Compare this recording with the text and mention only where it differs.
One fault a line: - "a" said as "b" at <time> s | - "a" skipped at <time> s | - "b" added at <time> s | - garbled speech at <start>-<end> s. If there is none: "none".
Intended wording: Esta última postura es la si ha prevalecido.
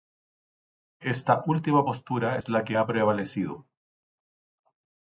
- "si" said as "que" at 2.6 s